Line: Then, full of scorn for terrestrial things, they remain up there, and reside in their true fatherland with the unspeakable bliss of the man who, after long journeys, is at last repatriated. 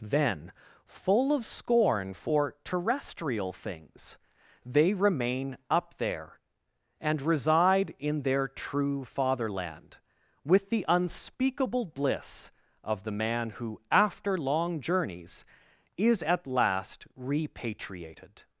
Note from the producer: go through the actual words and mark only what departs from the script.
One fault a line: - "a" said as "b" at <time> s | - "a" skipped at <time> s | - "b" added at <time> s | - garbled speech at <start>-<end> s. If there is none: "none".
none